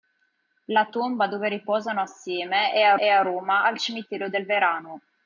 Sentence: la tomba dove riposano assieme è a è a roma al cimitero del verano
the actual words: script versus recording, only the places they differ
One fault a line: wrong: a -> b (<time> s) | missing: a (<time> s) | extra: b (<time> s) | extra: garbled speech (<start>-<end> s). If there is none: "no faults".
no faults